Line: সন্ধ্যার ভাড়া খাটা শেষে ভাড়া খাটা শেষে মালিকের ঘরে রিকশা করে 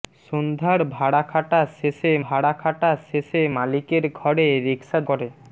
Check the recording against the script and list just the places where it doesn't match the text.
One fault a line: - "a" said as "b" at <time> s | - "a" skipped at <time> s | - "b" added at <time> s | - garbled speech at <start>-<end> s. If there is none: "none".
none